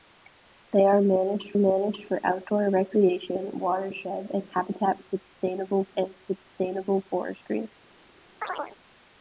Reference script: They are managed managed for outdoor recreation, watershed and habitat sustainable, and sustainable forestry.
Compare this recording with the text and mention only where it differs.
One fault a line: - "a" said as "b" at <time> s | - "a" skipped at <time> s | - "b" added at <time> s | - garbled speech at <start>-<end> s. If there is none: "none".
none